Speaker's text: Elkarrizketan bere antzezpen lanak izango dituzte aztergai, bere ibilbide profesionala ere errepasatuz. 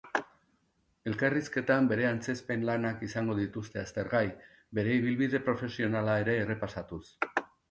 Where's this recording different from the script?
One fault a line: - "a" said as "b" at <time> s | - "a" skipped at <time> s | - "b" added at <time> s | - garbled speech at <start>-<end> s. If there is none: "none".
none